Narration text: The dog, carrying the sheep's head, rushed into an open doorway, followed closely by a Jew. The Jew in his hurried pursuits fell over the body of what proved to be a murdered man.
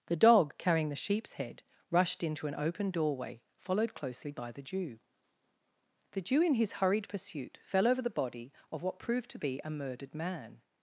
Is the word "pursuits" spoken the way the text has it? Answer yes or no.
no